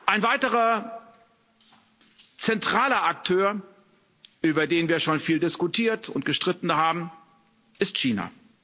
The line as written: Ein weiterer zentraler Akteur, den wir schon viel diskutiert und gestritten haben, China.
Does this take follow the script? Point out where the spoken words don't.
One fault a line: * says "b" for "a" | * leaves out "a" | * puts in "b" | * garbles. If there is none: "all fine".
* puts in "über"
* puts in "ist"